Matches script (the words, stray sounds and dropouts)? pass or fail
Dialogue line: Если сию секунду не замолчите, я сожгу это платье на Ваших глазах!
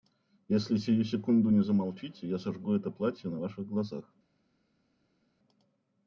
pass